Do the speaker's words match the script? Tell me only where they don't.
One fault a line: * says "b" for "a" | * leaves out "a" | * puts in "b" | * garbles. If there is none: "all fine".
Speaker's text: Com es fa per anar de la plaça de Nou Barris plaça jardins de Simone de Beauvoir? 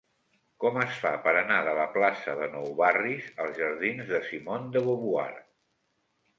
* says "als" for "plaça"